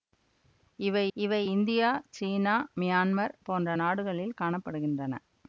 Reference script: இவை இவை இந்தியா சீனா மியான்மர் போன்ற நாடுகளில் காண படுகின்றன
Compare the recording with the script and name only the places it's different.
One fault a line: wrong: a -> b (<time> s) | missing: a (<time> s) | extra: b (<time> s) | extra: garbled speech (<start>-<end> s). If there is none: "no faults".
no faults